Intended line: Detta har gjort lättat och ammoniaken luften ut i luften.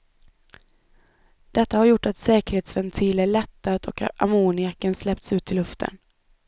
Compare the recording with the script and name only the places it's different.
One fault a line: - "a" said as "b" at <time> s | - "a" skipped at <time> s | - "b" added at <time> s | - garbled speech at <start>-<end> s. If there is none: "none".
- "att säkerhetsventiler" added at 2.0 s
- "luften" said as "släppts" at 5.0 s